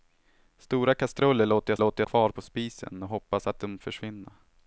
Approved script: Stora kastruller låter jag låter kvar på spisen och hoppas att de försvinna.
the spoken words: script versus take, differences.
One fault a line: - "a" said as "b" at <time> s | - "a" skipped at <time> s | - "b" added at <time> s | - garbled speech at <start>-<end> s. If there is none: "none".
none